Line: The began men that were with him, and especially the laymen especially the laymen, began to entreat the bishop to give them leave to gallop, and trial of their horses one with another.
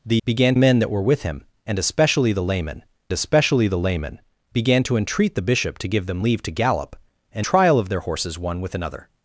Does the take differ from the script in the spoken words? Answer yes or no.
no